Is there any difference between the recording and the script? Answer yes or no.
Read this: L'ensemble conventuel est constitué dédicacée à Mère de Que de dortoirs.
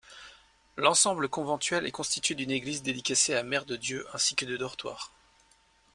yes